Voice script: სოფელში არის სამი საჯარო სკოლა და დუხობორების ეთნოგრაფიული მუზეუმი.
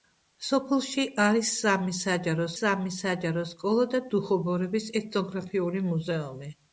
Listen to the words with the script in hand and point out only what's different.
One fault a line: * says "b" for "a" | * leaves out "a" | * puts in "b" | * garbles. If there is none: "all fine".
* puts in "სამი საჯარო"